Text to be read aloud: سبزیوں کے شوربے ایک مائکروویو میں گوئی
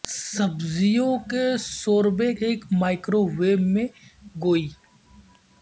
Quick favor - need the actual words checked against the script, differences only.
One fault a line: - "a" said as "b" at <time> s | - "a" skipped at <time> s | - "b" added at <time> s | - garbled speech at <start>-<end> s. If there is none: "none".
none